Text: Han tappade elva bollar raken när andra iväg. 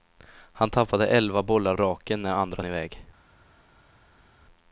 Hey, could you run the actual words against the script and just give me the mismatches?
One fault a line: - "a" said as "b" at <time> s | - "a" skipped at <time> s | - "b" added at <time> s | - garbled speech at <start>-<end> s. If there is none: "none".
none